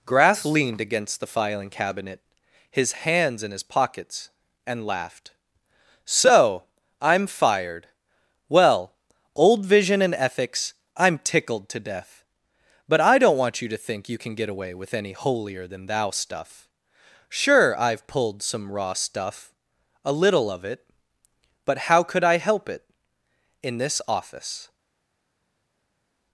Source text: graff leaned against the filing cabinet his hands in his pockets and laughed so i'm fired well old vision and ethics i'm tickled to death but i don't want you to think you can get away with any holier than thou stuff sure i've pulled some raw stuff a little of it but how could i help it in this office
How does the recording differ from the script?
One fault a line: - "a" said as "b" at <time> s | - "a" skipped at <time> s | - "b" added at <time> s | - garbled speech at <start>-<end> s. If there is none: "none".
none